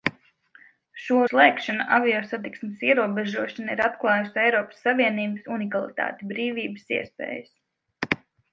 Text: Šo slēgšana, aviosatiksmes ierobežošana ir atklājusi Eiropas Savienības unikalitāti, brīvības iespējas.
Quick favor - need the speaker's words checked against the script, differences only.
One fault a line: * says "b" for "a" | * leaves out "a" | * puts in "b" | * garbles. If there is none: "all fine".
all fine